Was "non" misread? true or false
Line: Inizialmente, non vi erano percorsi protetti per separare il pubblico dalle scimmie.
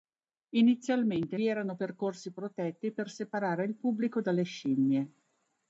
true